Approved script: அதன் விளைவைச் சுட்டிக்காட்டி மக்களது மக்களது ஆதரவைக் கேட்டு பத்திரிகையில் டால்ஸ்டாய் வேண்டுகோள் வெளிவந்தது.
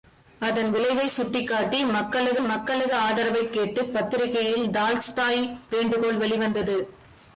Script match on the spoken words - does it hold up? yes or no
yes